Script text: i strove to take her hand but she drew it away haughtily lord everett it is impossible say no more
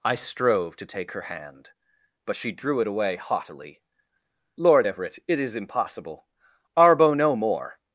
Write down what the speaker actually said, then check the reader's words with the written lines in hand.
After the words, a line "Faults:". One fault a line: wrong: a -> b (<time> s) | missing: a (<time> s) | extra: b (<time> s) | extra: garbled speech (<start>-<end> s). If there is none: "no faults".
i strove to take her hand but she drew it away haughtily lord everett it is impossible arbo no more
Faults:
wrong: say -> arbo (6.8 s)